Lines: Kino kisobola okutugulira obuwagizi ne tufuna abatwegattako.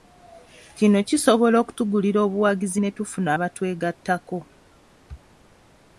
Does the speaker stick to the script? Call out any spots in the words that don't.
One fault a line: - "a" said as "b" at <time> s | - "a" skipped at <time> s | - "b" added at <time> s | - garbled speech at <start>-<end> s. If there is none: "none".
none